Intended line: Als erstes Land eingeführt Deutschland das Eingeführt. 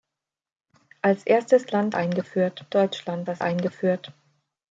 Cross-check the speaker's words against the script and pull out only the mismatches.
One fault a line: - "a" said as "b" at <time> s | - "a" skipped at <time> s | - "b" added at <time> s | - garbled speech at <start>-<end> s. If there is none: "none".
none